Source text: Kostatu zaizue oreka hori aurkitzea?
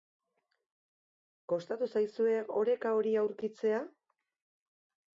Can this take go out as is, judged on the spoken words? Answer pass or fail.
pass